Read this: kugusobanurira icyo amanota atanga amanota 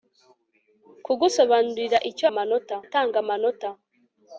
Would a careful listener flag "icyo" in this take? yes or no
no